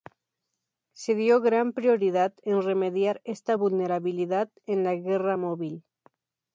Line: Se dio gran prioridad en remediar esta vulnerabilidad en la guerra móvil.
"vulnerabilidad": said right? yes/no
yes